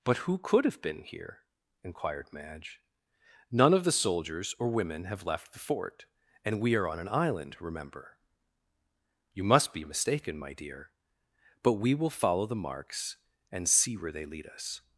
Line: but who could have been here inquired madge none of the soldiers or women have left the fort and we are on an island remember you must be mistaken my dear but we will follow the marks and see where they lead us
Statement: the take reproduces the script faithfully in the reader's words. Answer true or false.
true